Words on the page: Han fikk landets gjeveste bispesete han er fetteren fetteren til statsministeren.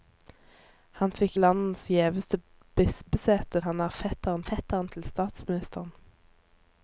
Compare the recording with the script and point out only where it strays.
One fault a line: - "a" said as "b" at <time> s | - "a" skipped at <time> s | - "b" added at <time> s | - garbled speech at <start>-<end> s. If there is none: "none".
none